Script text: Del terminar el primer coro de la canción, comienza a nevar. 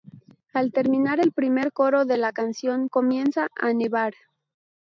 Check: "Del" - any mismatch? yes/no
yes